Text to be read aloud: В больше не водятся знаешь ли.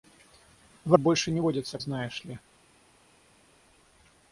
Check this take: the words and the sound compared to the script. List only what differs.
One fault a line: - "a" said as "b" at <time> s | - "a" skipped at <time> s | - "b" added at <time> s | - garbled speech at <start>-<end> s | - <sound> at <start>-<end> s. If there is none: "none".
none